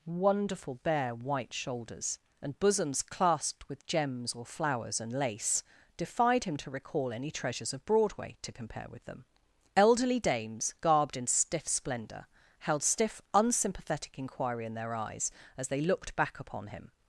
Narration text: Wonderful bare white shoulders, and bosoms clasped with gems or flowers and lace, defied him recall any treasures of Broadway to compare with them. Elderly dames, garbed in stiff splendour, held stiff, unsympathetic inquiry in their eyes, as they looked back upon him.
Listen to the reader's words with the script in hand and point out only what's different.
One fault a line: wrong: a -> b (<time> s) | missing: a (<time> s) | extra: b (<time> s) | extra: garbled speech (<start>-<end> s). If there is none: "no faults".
extra: to (6.6 s)